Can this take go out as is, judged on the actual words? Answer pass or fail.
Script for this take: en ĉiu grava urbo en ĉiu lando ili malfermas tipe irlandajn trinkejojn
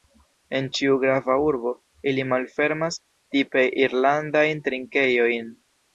fail